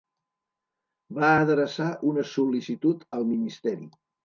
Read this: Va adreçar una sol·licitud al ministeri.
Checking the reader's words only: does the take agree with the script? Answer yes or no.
yes